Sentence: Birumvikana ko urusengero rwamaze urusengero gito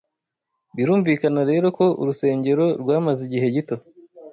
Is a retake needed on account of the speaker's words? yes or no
yes